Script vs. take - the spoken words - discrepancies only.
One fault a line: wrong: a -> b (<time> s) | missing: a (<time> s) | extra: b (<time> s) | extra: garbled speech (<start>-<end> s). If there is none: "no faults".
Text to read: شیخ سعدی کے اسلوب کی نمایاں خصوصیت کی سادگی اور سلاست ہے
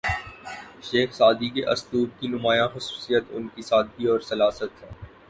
extra: ان (3.3 s)